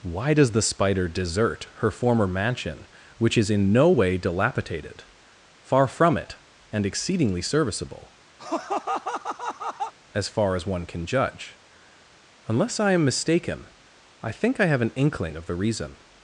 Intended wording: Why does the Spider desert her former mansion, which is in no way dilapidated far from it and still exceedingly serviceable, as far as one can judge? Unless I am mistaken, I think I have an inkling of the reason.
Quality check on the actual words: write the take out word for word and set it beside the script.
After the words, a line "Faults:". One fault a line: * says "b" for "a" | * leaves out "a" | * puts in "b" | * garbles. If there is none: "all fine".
Why does the Spider desert her former mansion, which is in no way dilapidated far from it and exceedingly serviceable, as far as one can judge? Unless I am mistaken, I think I have an inkling of the reason.
Faults:
* leaves out "still"